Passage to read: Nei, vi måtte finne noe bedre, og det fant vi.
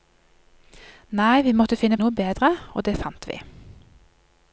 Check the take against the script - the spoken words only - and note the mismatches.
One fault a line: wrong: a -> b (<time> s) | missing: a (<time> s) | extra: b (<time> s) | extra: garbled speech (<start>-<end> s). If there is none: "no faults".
no faults